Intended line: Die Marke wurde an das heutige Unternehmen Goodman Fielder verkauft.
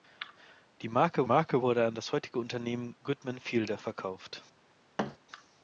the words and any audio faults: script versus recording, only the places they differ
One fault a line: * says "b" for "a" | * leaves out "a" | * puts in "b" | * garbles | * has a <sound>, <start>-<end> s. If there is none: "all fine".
* puts in "Marke"
* has a thud, 5.0-5.2 s